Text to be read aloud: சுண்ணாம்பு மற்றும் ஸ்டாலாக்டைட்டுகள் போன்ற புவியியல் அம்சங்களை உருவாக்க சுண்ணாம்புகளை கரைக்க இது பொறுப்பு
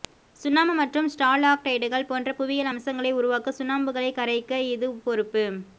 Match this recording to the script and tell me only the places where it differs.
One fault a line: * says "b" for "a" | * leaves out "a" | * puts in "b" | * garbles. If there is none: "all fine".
all fine